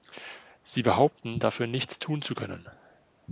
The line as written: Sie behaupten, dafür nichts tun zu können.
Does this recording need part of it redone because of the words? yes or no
no